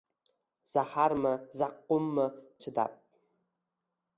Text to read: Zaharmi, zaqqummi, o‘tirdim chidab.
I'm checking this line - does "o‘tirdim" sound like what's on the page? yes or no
no